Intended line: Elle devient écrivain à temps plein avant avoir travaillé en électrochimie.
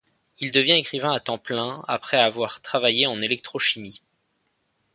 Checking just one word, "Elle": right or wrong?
wrong